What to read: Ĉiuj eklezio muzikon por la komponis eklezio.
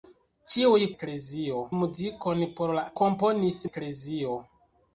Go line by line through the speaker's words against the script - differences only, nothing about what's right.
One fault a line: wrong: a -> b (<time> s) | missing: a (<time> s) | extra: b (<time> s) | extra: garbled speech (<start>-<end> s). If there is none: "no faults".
no faults